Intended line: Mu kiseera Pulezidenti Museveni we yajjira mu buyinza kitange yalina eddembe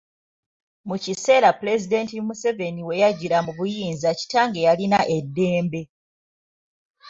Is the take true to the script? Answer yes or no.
yes